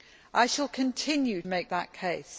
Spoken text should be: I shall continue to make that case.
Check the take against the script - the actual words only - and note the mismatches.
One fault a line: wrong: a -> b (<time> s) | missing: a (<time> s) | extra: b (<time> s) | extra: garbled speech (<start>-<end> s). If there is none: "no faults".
missing: to (1.4 s)